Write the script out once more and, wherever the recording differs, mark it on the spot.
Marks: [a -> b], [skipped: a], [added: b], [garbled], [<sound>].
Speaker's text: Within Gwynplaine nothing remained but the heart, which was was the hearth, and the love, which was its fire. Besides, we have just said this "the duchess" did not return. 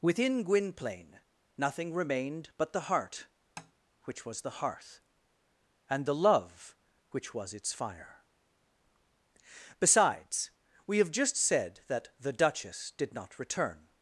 Within Gwynplaine nothing remained but the heart, [tap] which was [skipped: was] the hearth, and the love, which was its fire. Besides, we have just said [this -> that] "the duchess" did not return.